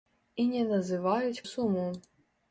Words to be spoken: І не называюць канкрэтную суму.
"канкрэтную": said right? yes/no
no